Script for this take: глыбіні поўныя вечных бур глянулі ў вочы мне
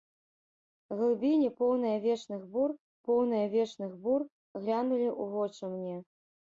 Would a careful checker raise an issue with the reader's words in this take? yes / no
yes